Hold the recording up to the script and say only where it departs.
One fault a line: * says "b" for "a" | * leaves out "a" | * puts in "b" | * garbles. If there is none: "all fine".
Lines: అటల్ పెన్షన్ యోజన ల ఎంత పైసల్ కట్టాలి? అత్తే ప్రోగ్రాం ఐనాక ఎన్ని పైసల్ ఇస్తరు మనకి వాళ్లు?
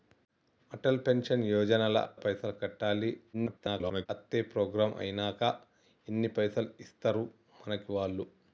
* leaves out "ఎంత"
* garbles